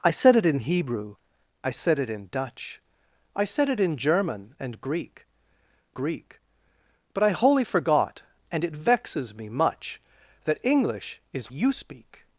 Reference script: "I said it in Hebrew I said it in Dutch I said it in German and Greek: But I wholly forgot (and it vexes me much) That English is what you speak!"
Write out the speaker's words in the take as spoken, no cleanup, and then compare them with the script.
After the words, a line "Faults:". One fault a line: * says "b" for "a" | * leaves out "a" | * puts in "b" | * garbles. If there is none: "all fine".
"I said it in Hebrew I said it in Dutch I said it in German and Greek Greek: But I wholly forgot (and it vexes me much) That English is you speak!"
Faults:
* puts in "Greek"
* leaves out "what"